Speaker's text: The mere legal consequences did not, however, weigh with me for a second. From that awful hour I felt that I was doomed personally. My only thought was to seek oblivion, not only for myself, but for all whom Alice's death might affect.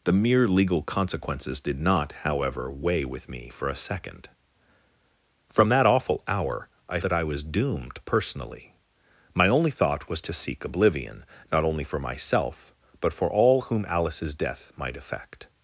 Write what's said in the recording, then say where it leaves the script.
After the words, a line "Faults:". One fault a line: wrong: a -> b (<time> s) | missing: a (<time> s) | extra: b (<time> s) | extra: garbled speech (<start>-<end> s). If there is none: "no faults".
The mere legal consequences did not, however, weigh with me for a second. From that awful hour I that I was doomed personally. My only thought was to seek oblivion, not only for myself, but for all whom Alice's death might affect.
Faults:
missing: felt (7.0 s)